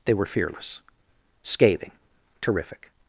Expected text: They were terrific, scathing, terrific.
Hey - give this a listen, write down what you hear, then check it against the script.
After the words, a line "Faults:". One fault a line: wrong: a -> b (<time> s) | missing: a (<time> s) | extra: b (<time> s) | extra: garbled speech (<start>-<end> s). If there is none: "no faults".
They were fearless, scathing, terrific.
Faults:
wrong: terrific -> fearless (0.2 s)